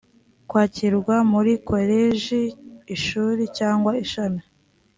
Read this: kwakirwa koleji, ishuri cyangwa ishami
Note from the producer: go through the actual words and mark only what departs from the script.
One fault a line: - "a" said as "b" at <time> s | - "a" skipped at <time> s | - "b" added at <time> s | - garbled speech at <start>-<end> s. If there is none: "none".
- "muri" added at 1.3 s